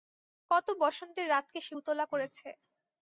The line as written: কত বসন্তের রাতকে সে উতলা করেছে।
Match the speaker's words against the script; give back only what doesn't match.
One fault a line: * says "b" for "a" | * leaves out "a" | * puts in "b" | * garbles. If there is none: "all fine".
all fine